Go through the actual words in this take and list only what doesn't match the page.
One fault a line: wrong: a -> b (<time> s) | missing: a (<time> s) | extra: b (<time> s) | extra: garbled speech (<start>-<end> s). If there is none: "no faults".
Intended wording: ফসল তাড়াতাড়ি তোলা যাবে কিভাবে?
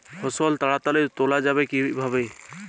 no faults